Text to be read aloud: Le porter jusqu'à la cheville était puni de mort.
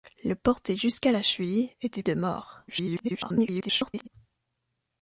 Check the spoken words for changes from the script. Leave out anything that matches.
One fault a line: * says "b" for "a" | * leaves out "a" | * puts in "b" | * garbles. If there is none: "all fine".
* leaves out "puni"
* garbles